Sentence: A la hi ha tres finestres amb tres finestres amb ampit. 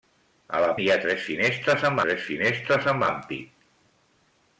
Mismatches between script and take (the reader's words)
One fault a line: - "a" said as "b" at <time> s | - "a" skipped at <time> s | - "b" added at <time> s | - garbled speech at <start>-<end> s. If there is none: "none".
none